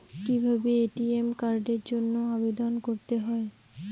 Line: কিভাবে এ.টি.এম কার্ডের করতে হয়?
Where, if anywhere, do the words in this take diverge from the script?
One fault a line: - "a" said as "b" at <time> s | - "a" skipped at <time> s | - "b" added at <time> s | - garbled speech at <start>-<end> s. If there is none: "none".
- "জন্য আবেদন" added at 1.9 s